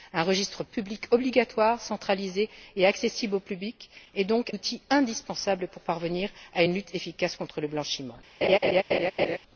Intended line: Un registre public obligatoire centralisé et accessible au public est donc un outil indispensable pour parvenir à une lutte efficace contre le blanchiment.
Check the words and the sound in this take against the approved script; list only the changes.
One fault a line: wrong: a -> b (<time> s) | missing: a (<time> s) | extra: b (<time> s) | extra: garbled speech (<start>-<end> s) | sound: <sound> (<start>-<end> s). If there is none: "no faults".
missing: un (4.5 s)
sound: laugh (8.4-9.4 s)